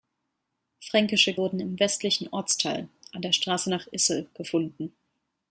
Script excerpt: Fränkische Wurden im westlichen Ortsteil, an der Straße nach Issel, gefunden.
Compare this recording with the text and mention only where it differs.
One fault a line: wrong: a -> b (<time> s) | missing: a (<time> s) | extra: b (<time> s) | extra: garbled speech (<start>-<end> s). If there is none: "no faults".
no faults